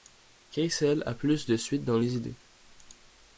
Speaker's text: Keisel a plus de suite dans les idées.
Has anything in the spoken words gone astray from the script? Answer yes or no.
no